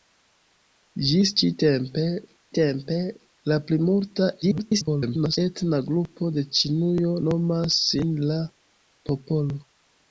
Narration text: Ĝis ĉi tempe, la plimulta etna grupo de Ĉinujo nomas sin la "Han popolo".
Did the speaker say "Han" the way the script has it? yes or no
no